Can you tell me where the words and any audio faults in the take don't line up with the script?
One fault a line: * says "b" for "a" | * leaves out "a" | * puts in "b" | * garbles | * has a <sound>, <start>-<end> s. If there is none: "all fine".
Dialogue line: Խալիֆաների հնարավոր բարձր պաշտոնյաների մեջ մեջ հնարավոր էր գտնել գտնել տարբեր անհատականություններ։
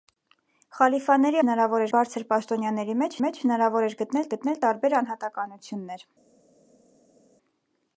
all fine